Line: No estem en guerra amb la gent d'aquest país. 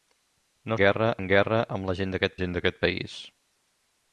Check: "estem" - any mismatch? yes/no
yes